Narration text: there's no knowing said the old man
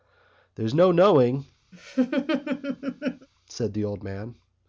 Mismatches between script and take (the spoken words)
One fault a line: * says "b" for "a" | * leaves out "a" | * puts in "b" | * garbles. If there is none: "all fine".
all fine